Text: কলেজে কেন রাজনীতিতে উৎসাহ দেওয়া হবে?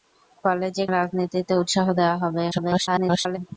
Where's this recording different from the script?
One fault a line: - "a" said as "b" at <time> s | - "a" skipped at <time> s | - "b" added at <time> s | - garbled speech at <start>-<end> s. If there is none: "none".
- "কেন" skipped at 0.9 s
- garbled speech at 2.5-3.4 s